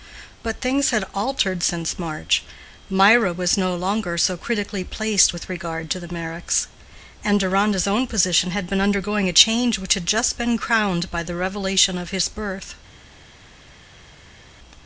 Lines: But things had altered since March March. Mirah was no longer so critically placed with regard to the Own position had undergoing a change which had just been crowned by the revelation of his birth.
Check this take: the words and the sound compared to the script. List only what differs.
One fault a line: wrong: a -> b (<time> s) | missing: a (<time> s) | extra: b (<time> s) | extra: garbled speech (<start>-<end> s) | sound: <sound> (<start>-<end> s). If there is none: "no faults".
missing: March (2.4 s)
extra: Meyricks and Deronda's (6.1 s)
extra: been (8.7 s)